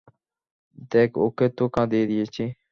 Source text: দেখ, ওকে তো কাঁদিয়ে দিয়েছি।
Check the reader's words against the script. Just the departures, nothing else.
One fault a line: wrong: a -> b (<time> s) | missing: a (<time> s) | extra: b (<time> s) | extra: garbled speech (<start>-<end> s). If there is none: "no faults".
no faults